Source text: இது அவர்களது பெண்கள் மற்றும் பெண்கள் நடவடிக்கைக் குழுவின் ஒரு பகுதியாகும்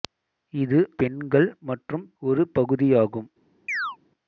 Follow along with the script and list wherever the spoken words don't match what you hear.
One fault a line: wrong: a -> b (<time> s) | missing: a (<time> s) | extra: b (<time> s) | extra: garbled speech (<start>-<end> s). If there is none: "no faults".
missing: அவர்களது (0.8 s)
missing: பெண்கள் நடவடிக்கைக் குழுவின் (2.0 s)